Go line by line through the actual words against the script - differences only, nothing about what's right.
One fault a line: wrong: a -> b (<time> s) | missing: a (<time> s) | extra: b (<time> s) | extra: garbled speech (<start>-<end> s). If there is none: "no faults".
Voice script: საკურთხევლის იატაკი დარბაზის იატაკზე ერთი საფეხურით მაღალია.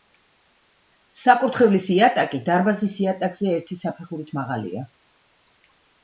no faults